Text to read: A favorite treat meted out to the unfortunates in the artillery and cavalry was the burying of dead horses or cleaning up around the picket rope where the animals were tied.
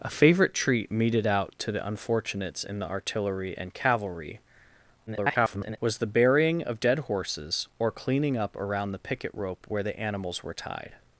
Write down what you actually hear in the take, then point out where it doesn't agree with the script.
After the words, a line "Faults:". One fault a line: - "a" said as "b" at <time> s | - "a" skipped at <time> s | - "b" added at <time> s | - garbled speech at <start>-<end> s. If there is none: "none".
A favorite treat meted out to the unfortunates in the artillery and cavalry [garbled] was the burying of dead horses or cleaning up around the picket rope where the animals were tied.
Faults:
- garbled speech at 5.1-5.8 s